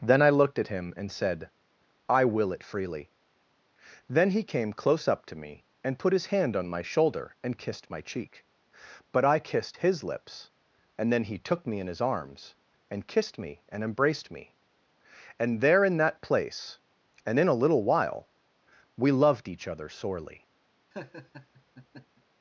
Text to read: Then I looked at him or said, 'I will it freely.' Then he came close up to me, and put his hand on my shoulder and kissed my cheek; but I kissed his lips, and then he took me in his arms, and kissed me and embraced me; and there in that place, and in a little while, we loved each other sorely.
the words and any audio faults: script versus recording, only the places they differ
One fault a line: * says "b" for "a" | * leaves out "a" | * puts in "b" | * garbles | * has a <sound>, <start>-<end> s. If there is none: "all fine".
* says "and" for "or"
* has a laugh, 20.9-22.2 s